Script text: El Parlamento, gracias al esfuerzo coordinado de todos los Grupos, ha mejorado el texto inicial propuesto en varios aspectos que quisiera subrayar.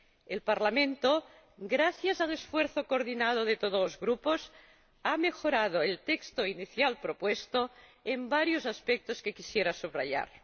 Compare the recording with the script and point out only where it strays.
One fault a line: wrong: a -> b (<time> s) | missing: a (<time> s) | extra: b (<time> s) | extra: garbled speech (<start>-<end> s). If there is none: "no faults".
no faults